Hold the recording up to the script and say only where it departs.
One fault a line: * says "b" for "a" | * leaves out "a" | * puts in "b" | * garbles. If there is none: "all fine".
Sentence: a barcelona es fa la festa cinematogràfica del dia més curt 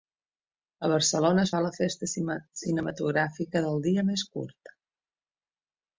all fine